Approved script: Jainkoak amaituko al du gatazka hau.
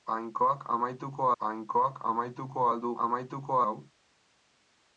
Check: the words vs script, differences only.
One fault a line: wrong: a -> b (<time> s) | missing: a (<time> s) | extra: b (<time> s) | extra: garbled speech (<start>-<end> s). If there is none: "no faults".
extra: jainkoak amaituko (1.4 s)
wrong: gatazka -> amaituko (3.1 s)